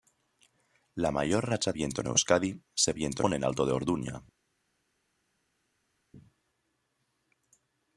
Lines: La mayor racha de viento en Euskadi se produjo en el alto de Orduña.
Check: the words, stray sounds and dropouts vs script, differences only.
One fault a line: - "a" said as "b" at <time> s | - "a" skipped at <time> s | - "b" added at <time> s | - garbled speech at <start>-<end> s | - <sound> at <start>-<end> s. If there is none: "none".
- "de" skipped at 1.7 s
- "produjo" said as "viento" at 2.9 s